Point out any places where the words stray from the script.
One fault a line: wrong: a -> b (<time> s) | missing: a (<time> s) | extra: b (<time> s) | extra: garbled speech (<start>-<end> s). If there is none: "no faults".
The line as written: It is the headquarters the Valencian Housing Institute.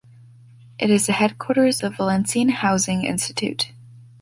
no faults